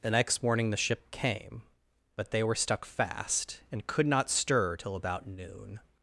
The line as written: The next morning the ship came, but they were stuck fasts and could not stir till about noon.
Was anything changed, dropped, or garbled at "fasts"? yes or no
yes